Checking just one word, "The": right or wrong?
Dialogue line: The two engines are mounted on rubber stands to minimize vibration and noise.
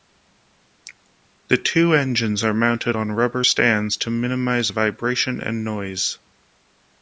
right